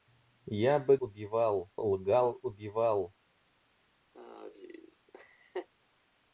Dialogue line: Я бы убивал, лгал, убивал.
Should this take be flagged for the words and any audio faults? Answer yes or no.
yes